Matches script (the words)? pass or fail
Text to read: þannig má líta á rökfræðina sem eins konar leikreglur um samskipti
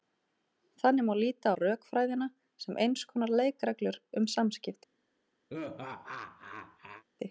pass